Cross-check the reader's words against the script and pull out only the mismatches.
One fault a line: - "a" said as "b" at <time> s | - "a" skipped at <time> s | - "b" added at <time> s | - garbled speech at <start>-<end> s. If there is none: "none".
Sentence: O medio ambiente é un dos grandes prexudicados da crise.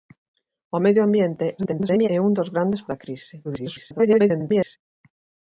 - garbled speech at 1.6-2.1 s
- "prexudicados" skipped at 2.8 s
- garbled speech at 3.4-4.8 s